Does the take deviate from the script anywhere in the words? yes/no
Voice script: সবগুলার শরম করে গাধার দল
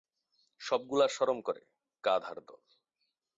no